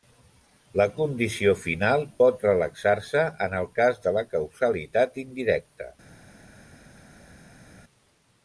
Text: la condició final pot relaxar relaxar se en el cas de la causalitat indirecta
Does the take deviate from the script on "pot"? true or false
false